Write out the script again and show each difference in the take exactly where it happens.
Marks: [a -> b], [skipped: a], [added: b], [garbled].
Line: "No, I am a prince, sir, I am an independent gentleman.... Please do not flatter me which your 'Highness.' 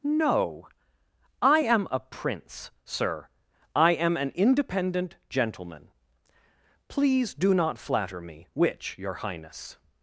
"No, I am a prince, sir, I am an independent gentleman.... Please do not flatter me which your 'Highness.'